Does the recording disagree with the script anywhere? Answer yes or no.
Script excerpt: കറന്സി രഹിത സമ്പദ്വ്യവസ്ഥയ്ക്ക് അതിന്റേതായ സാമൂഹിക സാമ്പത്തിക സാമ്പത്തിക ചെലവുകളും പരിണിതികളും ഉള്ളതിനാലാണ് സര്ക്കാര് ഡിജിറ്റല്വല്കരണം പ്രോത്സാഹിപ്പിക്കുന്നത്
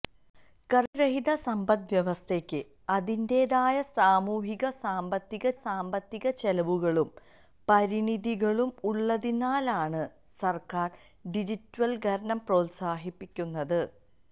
no